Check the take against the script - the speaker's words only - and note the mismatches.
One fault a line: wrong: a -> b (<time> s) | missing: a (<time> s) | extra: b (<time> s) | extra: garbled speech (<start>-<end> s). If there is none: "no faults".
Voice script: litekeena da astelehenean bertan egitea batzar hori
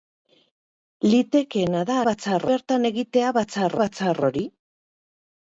wrong: astelehenean -> batzar (2.1 s)
extra: batzar (3.8 s)